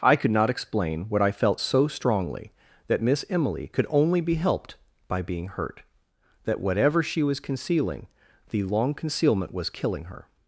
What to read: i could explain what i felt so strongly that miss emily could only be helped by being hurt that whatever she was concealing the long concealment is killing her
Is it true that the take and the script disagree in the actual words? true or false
true